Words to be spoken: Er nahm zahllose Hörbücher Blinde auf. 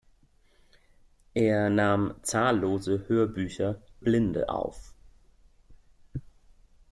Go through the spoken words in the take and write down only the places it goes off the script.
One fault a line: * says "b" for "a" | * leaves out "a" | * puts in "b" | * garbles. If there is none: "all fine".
all fine